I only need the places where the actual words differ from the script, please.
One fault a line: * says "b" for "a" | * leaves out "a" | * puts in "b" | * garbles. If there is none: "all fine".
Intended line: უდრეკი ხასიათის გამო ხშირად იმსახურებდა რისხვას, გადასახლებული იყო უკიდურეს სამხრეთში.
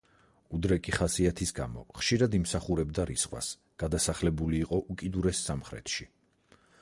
all fine